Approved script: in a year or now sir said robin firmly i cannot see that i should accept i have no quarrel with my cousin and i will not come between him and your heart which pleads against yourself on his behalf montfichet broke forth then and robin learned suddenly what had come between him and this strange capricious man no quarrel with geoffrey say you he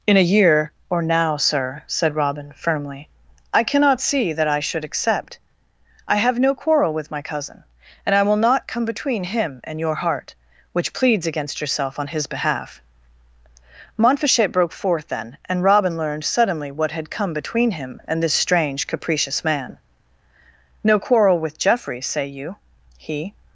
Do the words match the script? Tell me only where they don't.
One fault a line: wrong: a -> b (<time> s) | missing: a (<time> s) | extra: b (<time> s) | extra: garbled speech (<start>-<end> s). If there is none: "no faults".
no faults